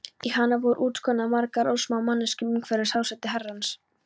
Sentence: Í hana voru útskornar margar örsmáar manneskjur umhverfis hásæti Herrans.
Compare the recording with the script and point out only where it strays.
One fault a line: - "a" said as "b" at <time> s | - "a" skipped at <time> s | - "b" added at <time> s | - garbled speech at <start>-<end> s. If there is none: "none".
none